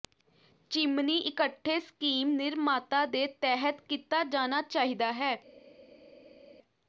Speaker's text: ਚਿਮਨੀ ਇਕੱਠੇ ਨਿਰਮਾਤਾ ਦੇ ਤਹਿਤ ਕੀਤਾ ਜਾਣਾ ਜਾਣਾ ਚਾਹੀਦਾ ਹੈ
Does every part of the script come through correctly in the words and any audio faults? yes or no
no